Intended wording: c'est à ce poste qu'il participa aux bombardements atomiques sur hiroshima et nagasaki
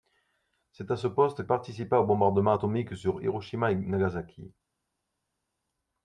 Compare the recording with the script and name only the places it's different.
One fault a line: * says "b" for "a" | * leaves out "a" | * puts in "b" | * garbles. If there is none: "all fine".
* leaves out "qu'il"